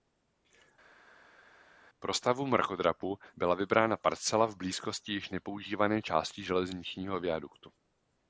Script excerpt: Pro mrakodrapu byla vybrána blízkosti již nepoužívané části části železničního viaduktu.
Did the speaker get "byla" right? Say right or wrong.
right